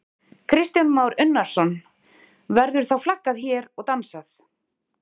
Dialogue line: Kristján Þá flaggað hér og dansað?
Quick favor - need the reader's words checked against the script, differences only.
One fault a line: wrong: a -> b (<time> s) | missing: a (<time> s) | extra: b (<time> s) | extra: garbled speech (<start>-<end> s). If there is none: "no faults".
extra: Már Unnarsson Verður (0.9 s)